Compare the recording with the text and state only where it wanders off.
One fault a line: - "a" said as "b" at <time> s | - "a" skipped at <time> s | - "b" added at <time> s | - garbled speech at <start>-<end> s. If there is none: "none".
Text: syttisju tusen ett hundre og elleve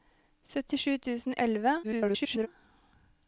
- "ett hundre" skipped at 1.4 s
- garbled speech at 1.8-2.5 s